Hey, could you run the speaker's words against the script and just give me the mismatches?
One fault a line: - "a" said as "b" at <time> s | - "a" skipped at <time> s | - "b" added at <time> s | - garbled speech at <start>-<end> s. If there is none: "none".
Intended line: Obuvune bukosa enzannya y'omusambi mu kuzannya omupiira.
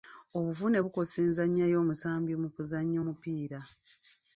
none